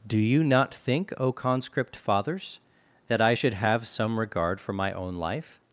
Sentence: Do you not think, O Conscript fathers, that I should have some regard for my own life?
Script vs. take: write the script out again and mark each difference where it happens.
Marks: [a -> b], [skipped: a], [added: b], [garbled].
Do you not think, O Conscript fathers, that I should have some regard for my own life?